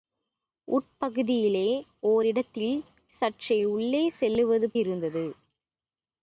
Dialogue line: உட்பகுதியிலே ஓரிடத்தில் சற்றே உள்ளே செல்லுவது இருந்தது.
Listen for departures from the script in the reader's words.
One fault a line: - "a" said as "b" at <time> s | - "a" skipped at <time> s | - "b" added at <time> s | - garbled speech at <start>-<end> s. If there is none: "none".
none